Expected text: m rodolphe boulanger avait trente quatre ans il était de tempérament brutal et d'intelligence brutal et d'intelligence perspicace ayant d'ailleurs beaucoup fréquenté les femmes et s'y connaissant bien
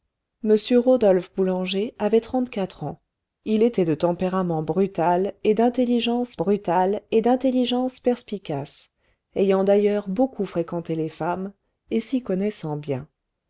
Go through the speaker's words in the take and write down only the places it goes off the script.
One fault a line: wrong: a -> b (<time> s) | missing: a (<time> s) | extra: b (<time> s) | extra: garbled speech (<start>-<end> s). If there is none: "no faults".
no faults